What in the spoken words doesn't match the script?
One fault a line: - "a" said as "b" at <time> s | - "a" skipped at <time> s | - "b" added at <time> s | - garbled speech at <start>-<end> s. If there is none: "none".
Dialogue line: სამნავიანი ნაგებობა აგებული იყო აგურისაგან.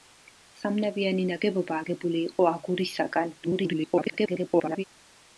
- garbled speech at 3.4-4.8 s